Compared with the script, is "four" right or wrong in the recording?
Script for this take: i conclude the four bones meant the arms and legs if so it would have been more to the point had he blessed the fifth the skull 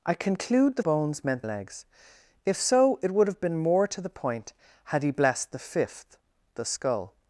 wrong